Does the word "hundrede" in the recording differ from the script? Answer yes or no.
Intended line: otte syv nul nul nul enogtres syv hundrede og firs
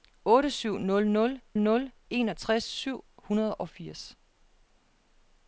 no